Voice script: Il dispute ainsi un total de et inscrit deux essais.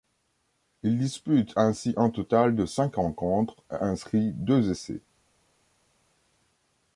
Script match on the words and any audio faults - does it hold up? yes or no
no